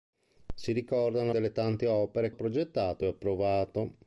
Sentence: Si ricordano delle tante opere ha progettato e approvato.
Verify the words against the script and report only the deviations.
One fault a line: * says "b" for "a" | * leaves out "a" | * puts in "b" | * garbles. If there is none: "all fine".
all fine